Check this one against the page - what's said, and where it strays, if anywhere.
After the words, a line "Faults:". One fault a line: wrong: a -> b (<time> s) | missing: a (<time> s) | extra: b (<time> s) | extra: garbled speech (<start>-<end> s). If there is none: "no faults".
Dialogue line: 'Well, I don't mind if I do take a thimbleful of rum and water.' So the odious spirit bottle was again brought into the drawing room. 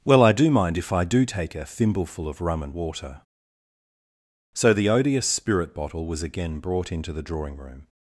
'Well, I do mind if I do take a thimbleful of rum and water.' So the odious spirit bottle was again brought into the drawing room.
Faults:
wrong: don't -> do (0.3 s)